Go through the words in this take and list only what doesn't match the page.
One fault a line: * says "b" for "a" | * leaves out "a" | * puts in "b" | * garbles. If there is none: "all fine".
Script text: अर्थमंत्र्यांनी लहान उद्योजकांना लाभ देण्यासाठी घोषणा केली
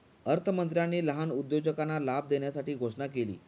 all fine